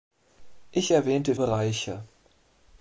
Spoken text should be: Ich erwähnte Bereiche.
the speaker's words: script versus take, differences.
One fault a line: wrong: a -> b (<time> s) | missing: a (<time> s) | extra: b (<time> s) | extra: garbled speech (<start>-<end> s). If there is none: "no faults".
no faults